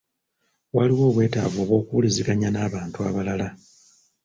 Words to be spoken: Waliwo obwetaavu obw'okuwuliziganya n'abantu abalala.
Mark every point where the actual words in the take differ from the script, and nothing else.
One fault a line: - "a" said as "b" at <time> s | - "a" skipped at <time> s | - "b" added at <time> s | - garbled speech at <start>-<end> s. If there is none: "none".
none